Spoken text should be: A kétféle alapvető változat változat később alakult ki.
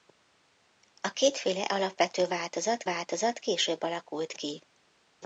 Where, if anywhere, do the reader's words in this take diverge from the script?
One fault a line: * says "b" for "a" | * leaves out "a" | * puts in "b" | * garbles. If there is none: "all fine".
all fine